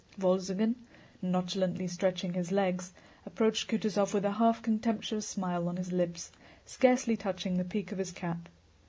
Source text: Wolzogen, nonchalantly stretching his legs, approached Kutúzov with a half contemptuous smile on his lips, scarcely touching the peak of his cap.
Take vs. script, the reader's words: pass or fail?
pass